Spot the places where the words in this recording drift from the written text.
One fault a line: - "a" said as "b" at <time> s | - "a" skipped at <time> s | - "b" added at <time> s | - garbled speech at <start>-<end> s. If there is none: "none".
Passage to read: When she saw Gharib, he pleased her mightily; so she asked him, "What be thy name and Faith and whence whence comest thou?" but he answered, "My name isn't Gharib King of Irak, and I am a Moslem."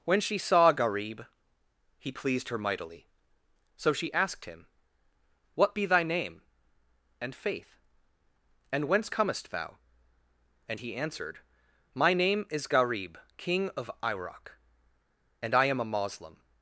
- "whence" skipped at 9.1 s
- "but" said as "and" at 10.7 s
- "isn't" said as "is" at 12.5 s